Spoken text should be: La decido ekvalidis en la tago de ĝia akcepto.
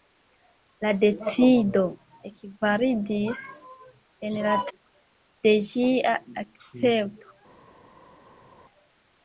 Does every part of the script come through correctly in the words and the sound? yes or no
no